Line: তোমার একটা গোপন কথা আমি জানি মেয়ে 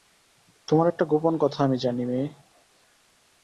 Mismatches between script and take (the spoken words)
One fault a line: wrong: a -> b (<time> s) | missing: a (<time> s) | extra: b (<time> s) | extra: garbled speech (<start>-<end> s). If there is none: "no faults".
no faults